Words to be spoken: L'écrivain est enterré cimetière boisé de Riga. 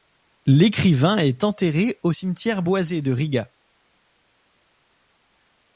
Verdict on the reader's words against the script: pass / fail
fail